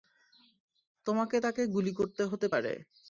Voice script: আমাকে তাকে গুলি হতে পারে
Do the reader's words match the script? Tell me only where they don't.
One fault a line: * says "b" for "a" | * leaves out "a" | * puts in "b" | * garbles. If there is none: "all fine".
* says "তোমাকে" for "আমাকে"
* puts in "করতে"